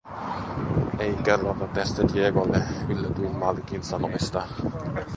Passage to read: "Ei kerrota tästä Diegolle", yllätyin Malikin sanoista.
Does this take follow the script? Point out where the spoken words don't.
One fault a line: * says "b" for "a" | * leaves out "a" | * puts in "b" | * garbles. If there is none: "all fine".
all fine